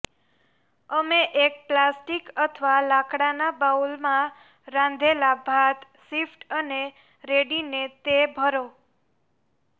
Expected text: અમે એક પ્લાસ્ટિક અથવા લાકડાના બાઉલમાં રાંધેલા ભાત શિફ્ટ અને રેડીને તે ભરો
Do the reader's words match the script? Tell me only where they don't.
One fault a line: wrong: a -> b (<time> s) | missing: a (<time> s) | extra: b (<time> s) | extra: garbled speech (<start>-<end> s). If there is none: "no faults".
no faults